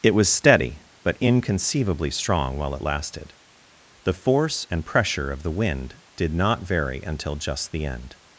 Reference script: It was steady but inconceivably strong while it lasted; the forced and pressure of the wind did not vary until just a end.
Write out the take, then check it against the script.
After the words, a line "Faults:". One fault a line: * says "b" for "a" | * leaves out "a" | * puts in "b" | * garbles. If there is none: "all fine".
It was steady but inconceivably strong while it lasted; the force and pressure of the wind did not vary until just the end.
Faults:
* says "force" for "forced"
* says "the" for "a"